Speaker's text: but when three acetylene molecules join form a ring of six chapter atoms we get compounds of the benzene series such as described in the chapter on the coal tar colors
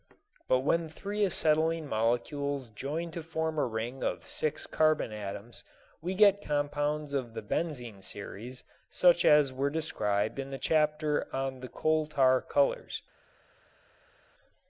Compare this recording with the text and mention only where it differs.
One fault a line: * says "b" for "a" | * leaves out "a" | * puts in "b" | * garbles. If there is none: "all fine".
* puts in "to"
* says "carbon" for "chapter"
* puts in "were"